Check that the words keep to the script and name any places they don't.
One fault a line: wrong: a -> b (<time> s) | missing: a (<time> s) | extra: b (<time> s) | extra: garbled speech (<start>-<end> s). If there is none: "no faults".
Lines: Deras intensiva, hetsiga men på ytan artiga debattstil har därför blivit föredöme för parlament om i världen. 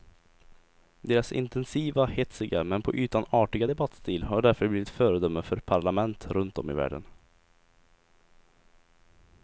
extra: runt (6.3 s)